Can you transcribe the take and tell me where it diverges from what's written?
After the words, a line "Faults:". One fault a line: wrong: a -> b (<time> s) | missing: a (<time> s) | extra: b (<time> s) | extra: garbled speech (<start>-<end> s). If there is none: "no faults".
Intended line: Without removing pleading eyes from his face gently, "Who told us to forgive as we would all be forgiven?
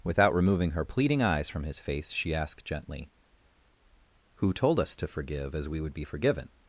Without removing her pleading eyes from his face she asked gently, "Who told us to forgive as we would be forgiven?
Faults:
extra: her (0.7 s)
extra: she asked (2.1 s)
missing: all (5.9 s)